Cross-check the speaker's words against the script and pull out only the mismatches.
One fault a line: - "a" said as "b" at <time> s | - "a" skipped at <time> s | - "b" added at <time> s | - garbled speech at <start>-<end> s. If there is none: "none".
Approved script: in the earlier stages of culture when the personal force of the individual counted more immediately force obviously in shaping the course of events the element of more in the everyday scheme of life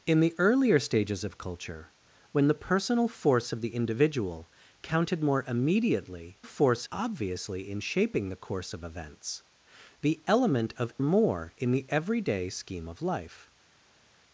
none